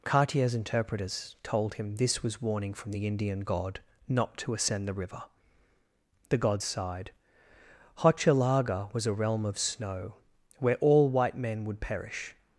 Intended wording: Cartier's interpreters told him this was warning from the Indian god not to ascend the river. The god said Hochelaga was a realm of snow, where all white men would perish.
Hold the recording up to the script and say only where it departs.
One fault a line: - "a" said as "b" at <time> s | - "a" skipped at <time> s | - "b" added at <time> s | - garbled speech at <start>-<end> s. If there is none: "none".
- "said" said as "sighed" at 6.6 s